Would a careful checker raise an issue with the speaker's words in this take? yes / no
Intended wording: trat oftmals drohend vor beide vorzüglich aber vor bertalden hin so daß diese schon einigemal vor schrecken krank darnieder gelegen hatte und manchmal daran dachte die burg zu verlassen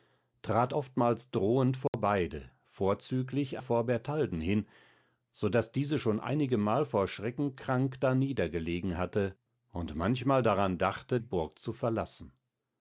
yes